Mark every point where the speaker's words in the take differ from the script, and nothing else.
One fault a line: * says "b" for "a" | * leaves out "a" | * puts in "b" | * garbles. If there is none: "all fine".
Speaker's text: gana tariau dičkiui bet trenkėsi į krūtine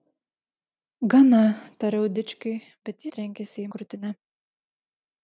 all fine